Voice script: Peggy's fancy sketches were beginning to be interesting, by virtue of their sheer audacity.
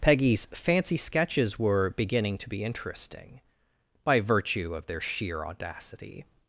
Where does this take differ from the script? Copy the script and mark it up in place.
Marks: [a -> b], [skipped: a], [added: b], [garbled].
Peggy's fancy sketches were beginning to be interesting, by virtue of their sheer audacity.